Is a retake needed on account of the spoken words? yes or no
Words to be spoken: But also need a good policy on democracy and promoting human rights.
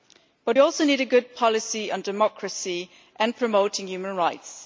no